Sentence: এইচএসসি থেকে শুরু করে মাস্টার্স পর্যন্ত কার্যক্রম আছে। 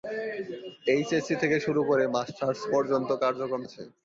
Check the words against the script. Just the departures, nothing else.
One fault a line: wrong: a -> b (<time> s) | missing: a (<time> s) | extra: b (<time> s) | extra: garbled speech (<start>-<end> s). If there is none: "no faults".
no faults